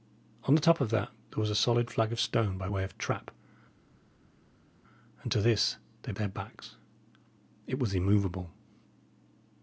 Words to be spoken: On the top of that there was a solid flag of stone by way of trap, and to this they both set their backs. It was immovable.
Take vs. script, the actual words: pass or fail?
fail